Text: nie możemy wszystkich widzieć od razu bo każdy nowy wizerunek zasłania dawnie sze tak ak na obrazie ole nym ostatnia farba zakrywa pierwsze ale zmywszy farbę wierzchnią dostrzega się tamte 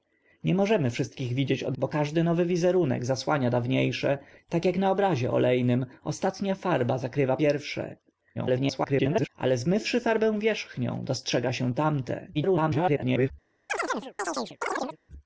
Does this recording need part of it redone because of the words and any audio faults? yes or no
yes